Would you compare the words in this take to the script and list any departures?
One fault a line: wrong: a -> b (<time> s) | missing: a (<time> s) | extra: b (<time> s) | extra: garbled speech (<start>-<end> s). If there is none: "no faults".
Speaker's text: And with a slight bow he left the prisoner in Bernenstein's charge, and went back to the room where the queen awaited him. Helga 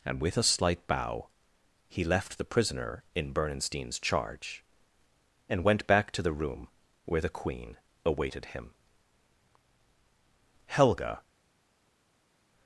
no faults